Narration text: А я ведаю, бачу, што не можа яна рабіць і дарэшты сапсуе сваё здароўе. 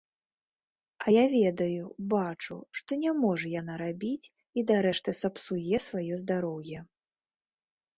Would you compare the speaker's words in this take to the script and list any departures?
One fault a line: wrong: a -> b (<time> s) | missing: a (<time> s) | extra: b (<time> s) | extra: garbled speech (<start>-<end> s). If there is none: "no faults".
no faults